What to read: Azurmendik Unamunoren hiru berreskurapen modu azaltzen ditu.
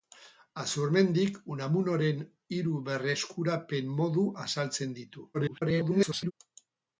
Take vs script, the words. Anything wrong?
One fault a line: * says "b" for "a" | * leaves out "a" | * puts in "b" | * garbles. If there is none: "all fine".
* garbles